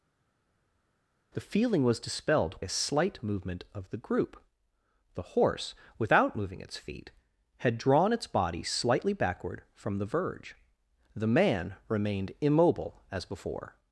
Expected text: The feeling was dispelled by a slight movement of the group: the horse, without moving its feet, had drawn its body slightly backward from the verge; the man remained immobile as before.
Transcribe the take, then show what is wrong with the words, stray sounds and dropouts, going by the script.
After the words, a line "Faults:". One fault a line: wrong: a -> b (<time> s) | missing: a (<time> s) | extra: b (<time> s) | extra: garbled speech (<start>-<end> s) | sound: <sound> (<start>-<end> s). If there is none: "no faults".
The feeling was dispelled a slight movement of the group: the horse, without moving its feet, had drawn its body slightly backward from the verge; the man remained immobile as before.
Faults:
missing: by (2.6 s)